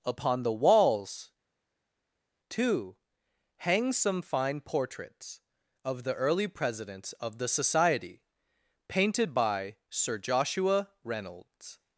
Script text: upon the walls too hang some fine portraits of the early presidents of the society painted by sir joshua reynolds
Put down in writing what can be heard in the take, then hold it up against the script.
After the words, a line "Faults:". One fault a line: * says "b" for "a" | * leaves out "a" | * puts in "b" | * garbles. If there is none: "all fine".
upon the walls too hang some fine portraits of the early presidents of the society painted by sir joshua reynolds
Faults:
all fine